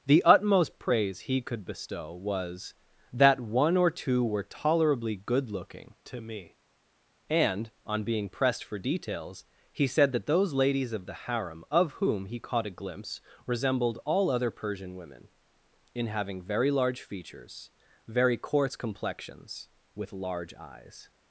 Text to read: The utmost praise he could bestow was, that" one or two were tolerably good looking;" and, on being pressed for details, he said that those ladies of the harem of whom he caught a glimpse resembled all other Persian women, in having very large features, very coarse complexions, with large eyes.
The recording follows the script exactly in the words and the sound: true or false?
false